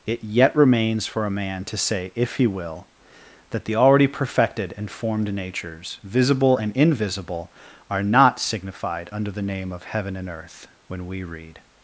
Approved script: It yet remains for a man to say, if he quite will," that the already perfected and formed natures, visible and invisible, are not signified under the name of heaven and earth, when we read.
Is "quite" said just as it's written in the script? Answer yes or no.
no